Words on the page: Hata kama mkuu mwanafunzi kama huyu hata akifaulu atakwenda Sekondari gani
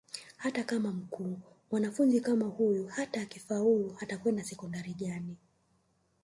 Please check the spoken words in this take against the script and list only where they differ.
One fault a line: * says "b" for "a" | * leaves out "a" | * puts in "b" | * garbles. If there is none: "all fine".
all fine